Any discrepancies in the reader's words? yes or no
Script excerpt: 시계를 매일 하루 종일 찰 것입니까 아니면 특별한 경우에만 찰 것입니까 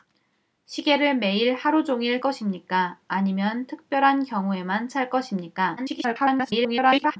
yes